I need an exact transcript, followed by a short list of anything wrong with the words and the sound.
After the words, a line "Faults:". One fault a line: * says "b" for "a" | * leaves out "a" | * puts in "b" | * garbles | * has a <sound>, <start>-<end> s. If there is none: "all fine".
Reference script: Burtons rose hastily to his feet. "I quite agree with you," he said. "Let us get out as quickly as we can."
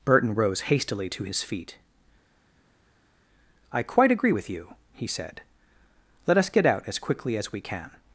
Burton rose hastily to his feet. "I quite agree with you," he said. "Let us get out as quickly as we can."
Faults:
* says "Burton" for "Burtons"